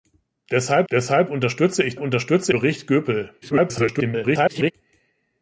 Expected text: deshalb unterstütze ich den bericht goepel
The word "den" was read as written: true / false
false